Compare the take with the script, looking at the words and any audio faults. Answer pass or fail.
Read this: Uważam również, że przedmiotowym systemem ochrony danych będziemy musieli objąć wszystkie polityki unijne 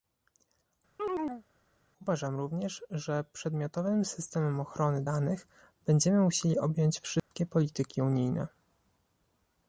fail